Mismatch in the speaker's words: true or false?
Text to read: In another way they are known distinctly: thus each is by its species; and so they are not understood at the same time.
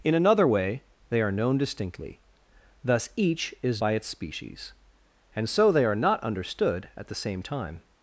false